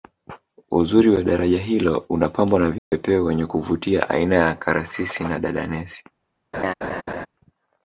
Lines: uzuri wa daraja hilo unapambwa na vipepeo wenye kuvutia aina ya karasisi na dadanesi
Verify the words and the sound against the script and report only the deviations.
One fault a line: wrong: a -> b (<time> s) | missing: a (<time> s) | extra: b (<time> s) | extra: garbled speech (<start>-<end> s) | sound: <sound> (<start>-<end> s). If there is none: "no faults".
sound: dropout (2.8-2.9 s)
sound: laugh (6.5-7.3 s)